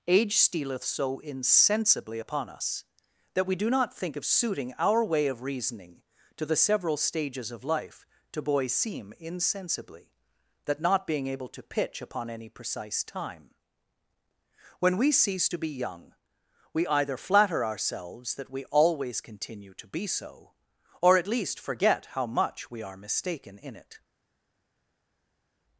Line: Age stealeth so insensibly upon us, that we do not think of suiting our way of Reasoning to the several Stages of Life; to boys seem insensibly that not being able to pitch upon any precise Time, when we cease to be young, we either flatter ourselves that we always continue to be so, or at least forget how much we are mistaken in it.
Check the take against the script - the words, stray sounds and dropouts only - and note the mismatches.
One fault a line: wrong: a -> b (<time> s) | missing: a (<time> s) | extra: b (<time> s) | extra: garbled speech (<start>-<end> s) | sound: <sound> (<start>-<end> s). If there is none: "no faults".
no faults